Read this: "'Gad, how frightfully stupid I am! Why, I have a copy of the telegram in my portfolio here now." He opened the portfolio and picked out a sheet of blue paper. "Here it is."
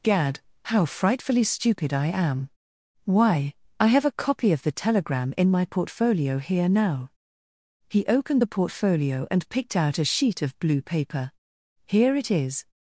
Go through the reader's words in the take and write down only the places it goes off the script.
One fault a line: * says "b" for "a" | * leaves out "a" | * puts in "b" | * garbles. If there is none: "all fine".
all fine